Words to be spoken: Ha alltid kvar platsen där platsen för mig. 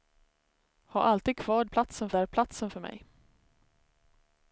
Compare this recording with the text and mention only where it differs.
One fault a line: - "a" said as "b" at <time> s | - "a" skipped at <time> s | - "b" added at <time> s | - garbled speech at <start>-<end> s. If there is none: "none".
none